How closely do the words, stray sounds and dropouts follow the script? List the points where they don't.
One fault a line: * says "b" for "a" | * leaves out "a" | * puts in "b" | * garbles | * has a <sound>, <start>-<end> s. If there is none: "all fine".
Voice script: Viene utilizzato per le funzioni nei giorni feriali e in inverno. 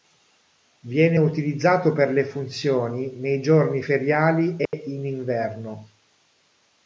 * has a dropout, 4.7-4.7 s